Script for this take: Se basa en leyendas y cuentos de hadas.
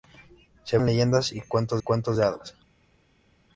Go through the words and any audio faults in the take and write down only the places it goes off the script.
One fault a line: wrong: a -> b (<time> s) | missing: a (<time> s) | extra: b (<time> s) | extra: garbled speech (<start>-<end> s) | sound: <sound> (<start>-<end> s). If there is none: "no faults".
missing: basa (0.8 s)
extra: cuentos (1.8 s)